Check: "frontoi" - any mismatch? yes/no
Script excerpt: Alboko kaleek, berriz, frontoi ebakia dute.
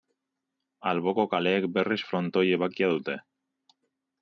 no